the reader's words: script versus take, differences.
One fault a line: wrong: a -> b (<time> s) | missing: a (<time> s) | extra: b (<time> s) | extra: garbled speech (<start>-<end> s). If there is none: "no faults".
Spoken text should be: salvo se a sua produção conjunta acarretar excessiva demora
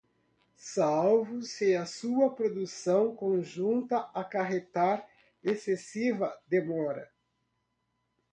no faults